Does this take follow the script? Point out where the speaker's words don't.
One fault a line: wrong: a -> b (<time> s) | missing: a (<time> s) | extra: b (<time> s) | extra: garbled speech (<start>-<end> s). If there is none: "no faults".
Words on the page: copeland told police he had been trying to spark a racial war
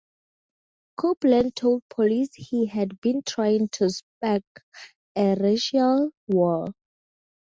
no faults